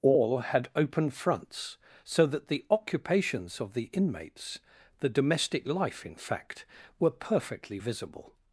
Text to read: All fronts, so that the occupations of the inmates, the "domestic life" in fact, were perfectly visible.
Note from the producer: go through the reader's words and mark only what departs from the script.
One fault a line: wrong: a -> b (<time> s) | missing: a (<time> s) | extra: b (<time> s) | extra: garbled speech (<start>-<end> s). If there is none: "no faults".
extra: had open (0.4 s)